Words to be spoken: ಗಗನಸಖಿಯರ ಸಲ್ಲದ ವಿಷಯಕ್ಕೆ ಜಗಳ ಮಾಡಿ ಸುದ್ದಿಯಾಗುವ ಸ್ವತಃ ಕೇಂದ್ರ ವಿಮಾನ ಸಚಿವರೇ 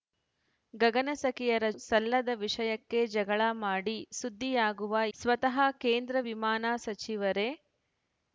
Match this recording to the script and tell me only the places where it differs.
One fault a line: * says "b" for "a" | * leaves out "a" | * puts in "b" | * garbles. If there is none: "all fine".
all fine